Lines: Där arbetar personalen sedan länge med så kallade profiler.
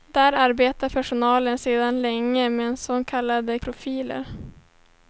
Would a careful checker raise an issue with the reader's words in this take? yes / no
no